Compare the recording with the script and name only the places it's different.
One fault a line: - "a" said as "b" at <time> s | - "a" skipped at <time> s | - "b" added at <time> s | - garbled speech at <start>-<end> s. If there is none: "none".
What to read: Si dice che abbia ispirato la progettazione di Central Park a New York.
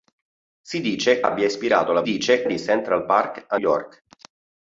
- "che" skipped at 1.2 s
- "progettazione" said as "dice" at 2.0 s
- "New" skipped at 3.6 s